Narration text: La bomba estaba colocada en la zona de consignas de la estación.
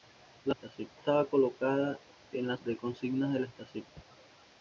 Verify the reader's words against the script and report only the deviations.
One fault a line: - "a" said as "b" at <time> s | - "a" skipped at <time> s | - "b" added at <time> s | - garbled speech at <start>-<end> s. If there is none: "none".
- "bomba" said as "estación" at 0.5 s
- "zona" skipped at 2.6 s